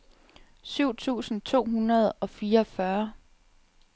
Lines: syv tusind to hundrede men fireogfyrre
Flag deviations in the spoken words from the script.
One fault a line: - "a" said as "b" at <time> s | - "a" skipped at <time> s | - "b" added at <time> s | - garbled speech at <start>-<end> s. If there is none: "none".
- "men" said as "og" at 2.2 s